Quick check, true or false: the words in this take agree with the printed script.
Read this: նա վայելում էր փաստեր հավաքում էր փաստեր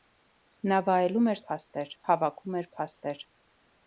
true